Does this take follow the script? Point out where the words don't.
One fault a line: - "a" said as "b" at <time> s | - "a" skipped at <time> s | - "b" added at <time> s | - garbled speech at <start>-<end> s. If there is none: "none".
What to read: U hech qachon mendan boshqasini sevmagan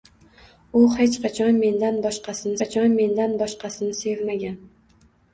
- "qachon mendan boshqasini" added at 2.6 s